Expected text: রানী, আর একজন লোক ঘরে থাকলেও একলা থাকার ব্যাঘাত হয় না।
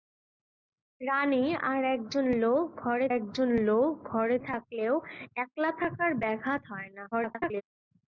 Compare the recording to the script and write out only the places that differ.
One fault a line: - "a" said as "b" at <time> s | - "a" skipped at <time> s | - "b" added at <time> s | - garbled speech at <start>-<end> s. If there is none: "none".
- "একজন লোক ঘরে" added at 3.2 s
- garbled speech at 7.1-7.6 s